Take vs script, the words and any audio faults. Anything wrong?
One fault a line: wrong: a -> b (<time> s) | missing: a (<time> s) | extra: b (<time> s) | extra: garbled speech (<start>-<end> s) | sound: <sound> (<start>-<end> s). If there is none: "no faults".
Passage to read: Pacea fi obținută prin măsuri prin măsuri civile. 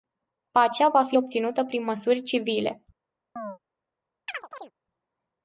extra: va (0.9 s)
missing: prin măsuri (2.2 s)
sound: chirp (3.4-3.6 s)
sound: chirp (4.3-4.7 s)